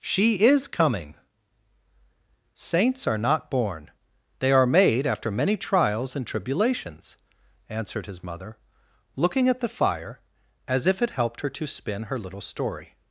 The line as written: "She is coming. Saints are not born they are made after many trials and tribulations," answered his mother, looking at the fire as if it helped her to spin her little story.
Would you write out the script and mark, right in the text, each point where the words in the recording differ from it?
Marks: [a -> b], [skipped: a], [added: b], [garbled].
"She is coming. Saints are not born they are made after many trials and tribulations," answered his mother, looking at the fire as if it helped her to spin her little story.